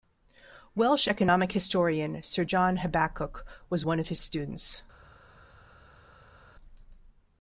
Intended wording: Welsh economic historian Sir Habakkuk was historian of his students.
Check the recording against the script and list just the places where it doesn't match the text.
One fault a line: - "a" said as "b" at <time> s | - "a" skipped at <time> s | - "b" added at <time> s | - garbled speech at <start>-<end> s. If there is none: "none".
- "John" added at 2.4 s
- "historian" said as "one" at 3.8 s